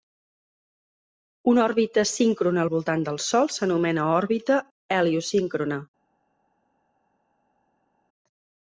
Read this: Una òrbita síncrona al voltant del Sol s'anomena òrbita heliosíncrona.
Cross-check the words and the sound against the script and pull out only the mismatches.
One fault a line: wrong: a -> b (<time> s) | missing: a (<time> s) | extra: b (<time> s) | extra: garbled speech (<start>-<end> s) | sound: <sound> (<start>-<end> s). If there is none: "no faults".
no faults